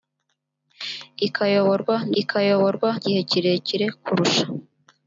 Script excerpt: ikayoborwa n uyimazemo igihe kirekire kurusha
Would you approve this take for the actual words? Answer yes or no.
no